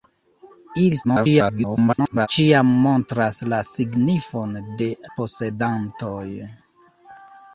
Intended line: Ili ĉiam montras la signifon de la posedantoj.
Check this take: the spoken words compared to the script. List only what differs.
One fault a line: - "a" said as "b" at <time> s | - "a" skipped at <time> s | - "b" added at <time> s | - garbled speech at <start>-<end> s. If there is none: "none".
- garbled speech at 1.0-2.3 s
- "la" skipped at 4.9 s